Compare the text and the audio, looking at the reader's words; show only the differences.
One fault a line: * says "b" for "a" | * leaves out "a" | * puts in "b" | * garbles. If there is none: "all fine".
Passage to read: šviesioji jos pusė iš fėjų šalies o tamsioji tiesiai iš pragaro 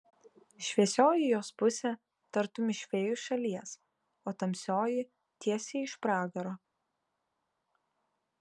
* puts in "tartum"